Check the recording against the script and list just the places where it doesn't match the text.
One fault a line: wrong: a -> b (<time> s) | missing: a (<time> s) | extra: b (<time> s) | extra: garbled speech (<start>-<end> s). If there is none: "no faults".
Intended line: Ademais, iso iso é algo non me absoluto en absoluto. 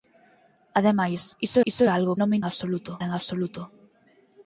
no faults